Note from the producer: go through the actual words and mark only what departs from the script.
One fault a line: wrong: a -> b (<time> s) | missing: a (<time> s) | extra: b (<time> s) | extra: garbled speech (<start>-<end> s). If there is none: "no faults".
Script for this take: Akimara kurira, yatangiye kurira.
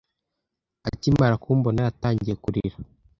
wrong: kurira -> kumbona (1.4 s)